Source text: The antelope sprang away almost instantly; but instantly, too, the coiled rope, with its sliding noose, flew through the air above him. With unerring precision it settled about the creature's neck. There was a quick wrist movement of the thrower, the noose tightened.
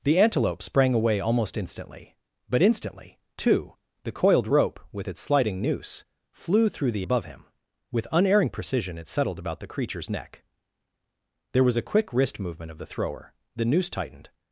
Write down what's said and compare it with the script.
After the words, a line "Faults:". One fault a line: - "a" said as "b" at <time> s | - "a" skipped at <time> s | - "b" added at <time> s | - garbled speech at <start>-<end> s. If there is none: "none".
The antelope sprang away almost instantly; but instantly, too, the coiled rope, with its sliding noose, flew through the above him. With unerring precision it settled about the creature's neck. There was a quick wrist movement of the thrower, the noose tightened.
Faults:
- "air" skipped at 7.0 s